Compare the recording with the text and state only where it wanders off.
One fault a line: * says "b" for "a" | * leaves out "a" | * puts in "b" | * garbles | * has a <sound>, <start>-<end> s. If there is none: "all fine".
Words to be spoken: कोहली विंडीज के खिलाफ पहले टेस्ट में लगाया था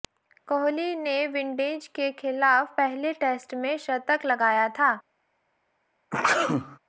* puts in "ने"
* puts in "शतक"
* has a sneeze, 6.1-6.8 s